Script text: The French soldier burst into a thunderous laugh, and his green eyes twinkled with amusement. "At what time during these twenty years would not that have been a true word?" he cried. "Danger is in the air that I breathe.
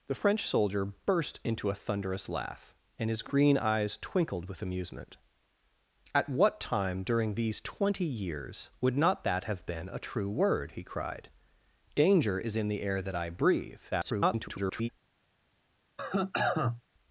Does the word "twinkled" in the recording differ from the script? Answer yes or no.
no